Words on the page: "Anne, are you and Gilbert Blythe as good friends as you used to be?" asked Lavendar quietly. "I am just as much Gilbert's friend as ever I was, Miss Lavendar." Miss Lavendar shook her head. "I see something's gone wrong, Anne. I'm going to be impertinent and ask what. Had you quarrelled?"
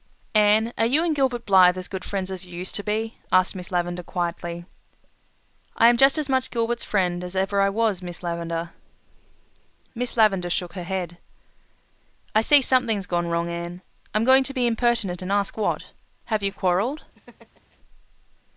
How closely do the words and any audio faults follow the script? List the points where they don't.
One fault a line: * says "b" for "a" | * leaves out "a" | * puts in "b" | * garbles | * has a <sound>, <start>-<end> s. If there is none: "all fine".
* puts in "Miss"
* says "Have" for "Had"
* has a laugh, 17.1-17.8 s